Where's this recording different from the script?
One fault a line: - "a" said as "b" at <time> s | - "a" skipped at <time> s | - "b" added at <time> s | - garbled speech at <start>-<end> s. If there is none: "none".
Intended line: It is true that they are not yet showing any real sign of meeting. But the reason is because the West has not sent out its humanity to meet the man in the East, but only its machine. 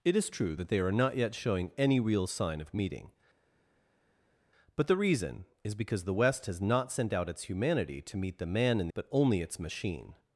- "the East" skipped at 8.9 s